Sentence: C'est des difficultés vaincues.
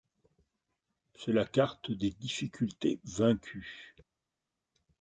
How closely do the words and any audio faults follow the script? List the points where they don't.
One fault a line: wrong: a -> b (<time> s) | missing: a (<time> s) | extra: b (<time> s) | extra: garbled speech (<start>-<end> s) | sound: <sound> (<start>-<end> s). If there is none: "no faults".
extra: la carte (1.3 s)